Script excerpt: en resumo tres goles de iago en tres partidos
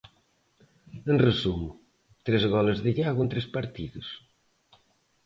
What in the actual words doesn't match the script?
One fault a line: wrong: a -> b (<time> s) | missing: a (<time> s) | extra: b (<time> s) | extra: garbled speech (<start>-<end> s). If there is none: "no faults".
no faults